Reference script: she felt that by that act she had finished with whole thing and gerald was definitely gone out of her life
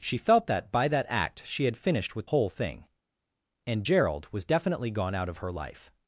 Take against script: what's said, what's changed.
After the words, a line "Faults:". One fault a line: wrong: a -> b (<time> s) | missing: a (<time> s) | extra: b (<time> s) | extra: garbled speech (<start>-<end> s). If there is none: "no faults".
she felt that by that act she had finished with whole thing and gerald was definitely gone out of her life
Faults:
no faults